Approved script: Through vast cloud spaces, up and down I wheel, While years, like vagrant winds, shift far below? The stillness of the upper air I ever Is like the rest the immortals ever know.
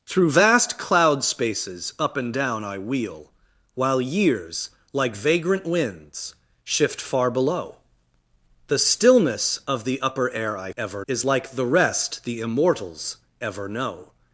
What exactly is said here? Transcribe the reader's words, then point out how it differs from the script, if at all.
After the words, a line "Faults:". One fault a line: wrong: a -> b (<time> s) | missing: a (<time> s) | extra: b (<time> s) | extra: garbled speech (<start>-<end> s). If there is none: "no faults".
Through vast cloud spaces, up and down I wheel, While years, like vagrant winds, shift far below? The stillness of the upper air I ever Is like the rest the immortals ever know.
Faults:
no faults